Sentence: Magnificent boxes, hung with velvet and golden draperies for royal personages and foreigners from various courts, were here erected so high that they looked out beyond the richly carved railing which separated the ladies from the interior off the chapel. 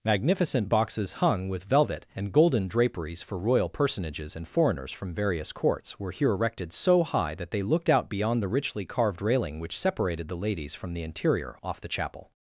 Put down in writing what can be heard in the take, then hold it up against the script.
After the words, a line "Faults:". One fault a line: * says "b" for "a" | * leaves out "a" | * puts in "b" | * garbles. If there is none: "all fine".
Magnificent boxes, hung with velvet and golden draperies for royal personages and foreigners from various courts, were here erected so high that they looked out beyond the richly carved railing which separated the ladies from the interior off the chapel.
Faults:
all fine